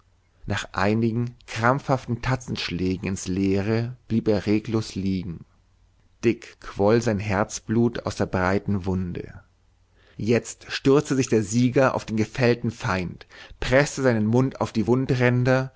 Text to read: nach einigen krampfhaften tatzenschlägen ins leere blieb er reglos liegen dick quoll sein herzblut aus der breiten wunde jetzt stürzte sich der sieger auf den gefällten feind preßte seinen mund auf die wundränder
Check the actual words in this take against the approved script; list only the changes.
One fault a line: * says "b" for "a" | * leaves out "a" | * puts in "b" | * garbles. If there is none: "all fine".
all fine